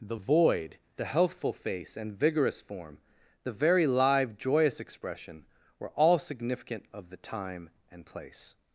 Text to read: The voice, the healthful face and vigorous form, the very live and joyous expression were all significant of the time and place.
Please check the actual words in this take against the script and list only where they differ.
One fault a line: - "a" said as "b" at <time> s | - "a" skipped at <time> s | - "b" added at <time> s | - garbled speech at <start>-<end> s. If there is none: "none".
- "voice" said as "void" at 0.1 s
- "and" skipped at 4.4 s